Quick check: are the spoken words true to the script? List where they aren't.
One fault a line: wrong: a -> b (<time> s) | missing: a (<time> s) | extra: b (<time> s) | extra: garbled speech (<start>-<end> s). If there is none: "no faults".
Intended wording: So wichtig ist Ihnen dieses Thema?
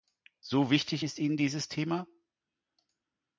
no faults